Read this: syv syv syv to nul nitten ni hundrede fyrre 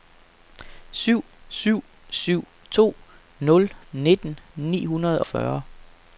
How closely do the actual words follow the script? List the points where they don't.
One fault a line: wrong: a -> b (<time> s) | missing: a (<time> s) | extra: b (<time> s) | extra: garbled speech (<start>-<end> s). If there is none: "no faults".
no faults